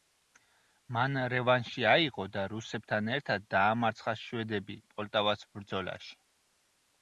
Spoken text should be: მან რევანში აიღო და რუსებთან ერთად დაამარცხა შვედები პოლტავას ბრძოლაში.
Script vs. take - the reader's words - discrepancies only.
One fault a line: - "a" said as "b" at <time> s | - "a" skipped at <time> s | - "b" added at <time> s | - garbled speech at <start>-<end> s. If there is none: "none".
none